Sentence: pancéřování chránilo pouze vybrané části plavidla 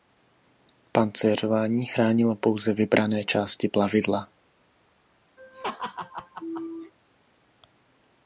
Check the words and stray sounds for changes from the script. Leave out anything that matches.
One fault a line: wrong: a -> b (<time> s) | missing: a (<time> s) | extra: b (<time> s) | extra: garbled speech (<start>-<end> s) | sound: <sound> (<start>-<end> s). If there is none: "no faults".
sound: laugh (5.4-6.9 s)